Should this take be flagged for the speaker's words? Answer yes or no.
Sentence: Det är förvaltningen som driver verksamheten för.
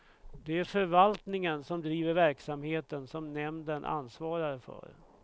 yes